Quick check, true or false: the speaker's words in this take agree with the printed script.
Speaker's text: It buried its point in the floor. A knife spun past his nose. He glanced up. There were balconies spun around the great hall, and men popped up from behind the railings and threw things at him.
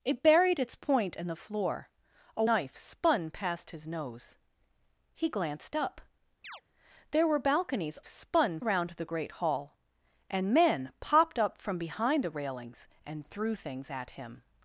true